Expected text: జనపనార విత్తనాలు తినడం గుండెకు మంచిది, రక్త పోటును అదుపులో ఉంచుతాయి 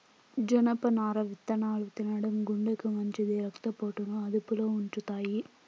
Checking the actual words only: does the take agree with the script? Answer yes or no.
yes